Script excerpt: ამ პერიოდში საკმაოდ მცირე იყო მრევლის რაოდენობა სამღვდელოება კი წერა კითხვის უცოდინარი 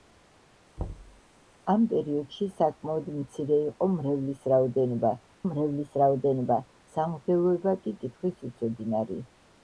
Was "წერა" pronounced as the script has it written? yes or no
no